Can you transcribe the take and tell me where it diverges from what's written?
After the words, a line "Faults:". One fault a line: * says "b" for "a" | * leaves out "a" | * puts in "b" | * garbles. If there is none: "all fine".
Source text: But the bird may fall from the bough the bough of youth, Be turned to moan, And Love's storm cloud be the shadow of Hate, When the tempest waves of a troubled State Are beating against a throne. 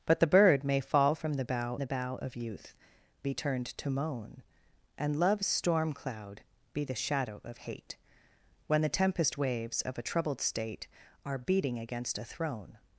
But the bird may fall from the bough the bough of youth, Be turned to moan, And Love's storm cloud be the shadow of Hate, When the tempest waves of a troubled State Are beating against a throne.
Faults:
all fine